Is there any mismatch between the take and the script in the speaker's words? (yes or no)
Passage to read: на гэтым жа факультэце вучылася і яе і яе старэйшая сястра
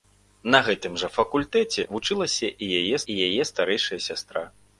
no